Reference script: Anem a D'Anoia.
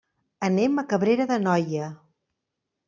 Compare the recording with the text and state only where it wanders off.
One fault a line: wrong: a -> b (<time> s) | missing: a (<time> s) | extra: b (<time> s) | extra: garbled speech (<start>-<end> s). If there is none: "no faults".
extra: Cabrera (0.9 s)